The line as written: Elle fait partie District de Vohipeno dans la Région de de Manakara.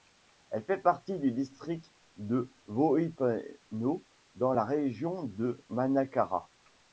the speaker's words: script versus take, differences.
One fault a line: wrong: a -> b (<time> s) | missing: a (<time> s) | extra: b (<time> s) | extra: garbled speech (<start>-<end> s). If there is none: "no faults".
extra: du (1.2 s)
missing: de (5.6 s)